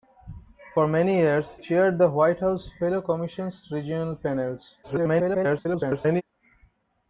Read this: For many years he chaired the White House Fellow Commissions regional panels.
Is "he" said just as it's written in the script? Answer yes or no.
no